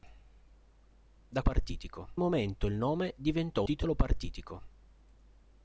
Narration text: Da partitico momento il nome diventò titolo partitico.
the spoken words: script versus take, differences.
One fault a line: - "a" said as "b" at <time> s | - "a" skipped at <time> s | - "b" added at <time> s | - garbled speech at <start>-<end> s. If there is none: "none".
none